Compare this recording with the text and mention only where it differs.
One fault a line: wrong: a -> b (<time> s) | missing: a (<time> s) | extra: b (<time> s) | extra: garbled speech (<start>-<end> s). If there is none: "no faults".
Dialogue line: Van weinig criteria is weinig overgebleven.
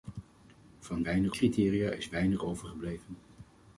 no faults